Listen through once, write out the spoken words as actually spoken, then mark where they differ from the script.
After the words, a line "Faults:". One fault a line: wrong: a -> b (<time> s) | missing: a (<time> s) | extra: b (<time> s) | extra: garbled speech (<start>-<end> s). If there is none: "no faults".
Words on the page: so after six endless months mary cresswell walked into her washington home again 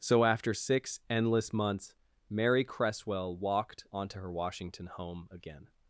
so after six endless months mary cresswell walked onto her washington home again
Faults:
wrong: into -> onto (3.9 s)